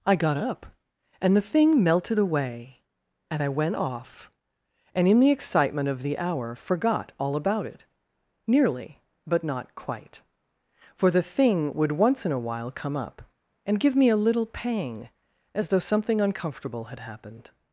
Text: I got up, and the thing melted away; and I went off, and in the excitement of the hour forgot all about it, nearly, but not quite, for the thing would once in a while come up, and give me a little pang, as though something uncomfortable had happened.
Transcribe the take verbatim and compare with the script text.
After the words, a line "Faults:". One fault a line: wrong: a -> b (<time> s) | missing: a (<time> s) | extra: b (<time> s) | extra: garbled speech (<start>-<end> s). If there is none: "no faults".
I got up, and the thing melted away; and I went off, and in the excitement of the hour forgot all about it, nearly, but not quite, for the thing would once in a while come up, and give me a little pang, as though something uncomfortable had happened.
Faults:
no faults